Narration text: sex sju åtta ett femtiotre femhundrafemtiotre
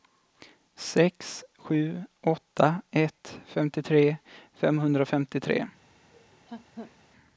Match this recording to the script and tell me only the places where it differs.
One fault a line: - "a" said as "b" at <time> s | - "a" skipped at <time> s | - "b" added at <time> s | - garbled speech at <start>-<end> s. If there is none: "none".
none